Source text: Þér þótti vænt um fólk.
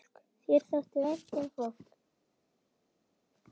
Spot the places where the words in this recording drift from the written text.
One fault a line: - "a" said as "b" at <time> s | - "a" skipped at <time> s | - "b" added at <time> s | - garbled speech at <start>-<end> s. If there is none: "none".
none